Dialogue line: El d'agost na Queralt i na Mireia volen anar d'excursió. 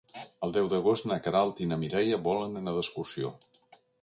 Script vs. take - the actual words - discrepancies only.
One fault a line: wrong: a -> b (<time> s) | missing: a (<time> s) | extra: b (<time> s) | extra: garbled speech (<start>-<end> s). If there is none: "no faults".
extra: deu (0.6 s)